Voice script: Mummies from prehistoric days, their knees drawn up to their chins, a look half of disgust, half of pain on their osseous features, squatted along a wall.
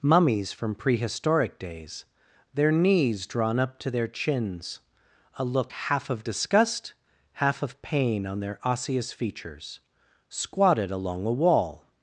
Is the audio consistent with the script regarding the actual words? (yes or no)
yes